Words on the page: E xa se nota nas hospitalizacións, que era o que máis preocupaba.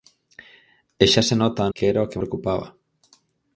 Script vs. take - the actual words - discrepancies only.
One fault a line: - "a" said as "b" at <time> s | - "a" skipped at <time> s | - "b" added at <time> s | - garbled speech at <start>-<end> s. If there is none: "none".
- "nas hospitalizacións" skipped at 1.6 s
- "máis" skipped at 2.2 s